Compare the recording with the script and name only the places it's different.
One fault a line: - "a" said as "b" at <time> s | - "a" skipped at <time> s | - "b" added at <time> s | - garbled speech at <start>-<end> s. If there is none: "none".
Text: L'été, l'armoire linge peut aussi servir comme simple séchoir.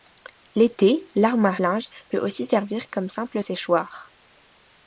none